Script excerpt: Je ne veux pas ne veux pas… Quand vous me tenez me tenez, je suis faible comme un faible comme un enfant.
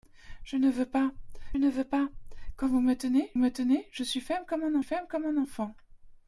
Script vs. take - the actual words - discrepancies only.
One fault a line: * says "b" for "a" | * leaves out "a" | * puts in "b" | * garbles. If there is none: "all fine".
all fine